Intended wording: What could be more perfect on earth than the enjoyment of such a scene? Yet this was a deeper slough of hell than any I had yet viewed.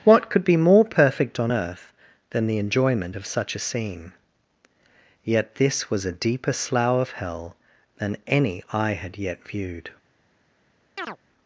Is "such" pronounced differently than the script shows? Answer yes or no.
no